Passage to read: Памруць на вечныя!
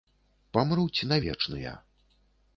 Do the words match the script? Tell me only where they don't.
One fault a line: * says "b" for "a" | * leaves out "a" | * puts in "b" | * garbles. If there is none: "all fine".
all fine